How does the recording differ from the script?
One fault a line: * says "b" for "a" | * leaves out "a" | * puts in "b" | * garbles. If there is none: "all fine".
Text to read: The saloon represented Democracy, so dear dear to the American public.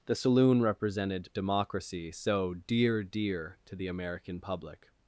all fine